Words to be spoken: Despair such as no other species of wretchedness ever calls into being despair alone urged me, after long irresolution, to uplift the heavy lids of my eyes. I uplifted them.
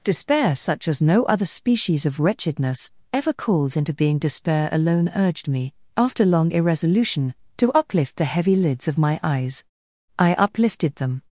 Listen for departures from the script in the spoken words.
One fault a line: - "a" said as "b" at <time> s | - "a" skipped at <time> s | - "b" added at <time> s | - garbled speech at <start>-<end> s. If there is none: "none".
none